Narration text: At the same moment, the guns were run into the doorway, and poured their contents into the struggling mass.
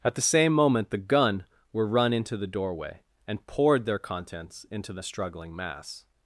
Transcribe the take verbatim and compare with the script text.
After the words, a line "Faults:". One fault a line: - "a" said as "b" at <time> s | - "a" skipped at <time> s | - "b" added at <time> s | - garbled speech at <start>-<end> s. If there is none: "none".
At the same moment, the gun were run into the doorway, and poured their contents into the struggling mass.
Faults:
- "guns" said as "gun" at 1.0 s